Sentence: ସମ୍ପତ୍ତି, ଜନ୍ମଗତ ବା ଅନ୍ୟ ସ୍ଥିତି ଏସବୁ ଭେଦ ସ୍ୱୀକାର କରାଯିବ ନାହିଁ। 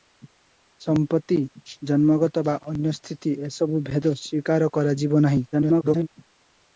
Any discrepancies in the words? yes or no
yes